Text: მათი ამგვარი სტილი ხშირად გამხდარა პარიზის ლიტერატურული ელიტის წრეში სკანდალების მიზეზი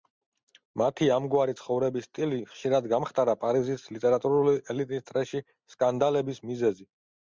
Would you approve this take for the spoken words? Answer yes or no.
no